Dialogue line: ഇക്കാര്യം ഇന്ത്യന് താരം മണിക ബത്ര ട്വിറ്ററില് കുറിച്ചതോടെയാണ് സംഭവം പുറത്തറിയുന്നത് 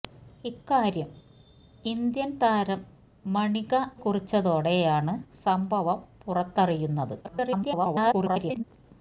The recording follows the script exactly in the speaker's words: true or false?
false